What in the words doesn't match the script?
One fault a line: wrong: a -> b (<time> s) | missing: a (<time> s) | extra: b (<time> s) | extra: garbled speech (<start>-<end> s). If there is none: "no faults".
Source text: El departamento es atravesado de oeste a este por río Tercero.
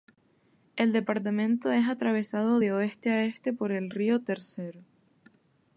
extra: el (3.7 s)